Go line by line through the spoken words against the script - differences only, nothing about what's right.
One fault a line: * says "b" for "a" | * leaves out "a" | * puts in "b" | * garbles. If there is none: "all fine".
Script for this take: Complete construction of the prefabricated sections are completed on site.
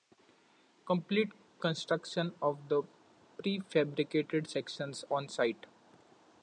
* leaves out "are completed"